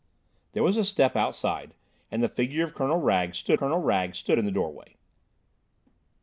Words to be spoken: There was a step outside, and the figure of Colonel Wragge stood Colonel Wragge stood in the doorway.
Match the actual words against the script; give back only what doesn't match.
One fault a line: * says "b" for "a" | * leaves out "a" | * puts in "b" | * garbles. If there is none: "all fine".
all fine